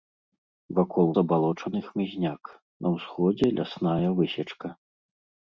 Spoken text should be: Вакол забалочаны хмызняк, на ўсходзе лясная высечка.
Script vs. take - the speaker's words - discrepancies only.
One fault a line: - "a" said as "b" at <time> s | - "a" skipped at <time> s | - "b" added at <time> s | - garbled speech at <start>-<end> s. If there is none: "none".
none